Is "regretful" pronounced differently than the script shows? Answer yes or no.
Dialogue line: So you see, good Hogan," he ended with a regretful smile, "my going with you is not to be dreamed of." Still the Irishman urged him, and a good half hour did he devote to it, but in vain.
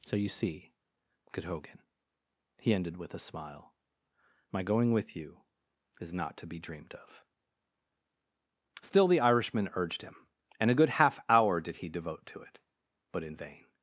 yes